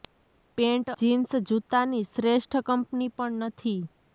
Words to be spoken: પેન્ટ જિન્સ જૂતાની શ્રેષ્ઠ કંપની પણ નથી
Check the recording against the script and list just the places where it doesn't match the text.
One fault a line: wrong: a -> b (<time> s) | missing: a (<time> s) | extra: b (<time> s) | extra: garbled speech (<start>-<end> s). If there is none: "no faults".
no faults